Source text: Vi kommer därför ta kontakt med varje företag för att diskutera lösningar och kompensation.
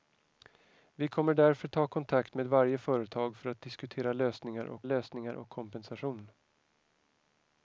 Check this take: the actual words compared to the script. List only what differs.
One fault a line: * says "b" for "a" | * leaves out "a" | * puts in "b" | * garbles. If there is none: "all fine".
* puts in "lösningar och"